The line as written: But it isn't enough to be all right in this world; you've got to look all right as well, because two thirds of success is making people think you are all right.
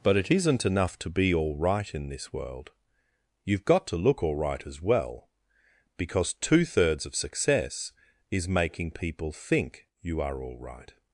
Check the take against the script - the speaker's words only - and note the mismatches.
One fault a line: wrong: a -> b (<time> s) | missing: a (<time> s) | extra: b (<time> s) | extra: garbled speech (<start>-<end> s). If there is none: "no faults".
no faults